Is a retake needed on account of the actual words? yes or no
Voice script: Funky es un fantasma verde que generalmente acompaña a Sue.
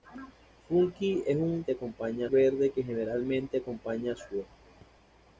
yes